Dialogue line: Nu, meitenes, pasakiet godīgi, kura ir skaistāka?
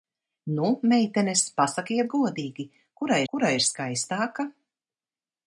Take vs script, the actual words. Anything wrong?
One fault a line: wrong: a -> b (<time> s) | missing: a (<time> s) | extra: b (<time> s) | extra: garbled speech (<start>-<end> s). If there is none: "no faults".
extra: kura (3.3 s)